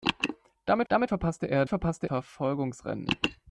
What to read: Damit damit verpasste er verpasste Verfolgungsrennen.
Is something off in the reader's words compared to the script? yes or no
no